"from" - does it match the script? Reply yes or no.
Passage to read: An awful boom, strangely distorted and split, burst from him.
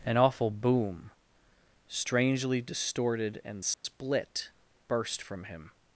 yes